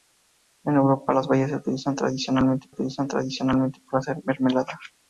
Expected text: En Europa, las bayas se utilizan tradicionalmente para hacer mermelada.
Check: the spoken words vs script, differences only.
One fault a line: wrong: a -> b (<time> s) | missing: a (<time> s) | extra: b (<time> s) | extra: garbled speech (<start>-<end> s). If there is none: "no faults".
extra: utilizan tradicionalmente (2.7 s)